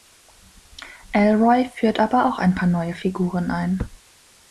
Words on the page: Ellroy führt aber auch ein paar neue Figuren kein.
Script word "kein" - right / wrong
wrong